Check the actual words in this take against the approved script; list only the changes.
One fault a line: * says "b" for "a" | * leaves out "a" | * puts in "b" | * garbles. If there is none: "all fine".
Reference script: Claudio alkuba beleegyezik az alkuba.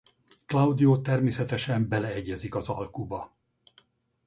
* says "természetesen" for "alkuba"